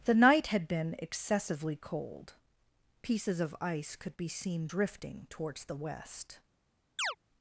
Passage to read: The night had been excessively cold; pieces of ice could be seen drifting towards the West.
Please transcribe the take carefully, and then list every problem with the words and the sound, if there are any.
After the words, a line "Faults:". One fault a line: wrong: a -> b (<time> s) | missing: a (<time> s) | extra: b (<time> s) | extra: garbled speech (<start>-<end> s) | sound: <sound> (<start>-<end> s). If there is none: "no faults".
The night had been excessively cold; pieces of ice could be seen drifting towards the West.
Faults:
sound: chirp (7.0-7.2 s)